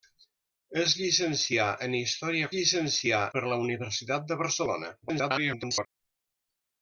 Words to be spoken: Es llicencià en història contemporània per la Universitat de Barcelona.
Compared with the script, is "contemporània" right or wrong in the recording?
wrong